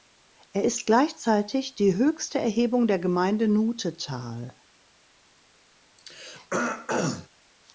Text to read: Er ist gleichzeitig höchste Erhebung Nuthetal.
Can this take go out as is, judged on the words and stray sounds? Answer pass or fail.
fail